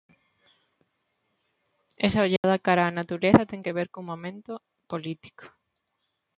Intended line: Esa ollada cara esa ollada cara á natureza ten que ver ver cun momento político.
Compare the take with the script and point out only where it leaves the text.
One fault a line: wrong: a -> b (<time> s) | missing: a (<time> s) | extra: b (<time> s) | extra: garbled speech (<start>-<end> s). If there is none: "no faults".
missing: esa ollada cara (2.9 s)
missing: ver (3.9 s)